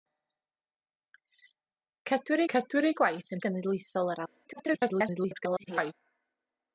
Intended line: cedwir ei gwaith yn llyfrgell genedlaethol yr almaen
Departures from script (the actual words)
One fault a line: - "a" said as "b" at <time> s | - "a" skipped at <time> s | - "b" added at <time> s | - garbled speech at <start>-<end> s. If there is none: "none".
- "cedwir" added at 2.5 s
- "llyfrgell" skipped at 3.4 s
- garbled speech at 4.4-5.9 s